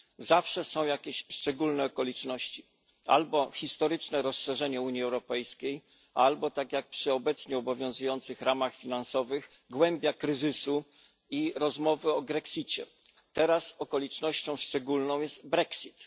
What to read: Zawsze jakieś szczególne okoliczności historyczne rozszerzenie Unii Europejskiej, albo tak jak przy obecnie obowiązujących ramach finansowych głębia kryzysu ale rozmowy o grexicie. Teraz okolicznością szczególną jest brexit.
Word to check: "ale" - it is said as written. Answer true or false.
false